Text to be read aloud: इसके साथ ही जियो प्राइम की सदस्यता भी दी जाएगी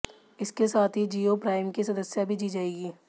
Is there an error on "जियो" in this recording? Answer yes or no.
no